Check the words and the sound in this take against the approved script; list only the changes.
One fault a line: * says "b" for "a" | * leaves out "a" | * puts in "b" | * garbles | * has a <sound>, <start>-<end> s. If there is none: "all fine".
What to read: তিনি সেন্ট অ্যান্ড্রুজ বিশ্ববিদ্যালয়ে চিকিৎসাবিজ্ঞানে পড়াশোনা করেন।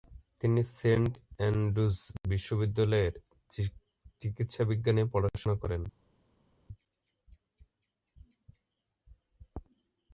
all fine